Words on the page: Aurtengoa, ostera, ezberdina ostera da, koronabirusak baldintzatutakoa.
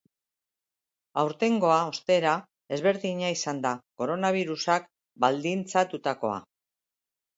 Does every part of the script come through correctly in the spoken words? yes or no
no